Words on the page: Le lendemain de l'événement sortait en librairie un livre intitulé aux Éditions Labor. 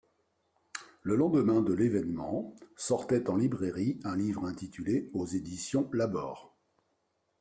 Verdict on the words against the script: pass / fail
pass